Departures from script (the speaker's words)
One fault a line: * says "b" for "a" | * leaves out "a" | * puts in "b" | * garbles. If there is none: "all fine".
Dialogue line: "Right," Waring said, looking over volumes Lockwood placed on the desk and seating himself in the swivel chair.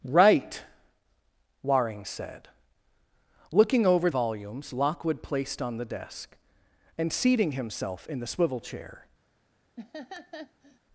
all fine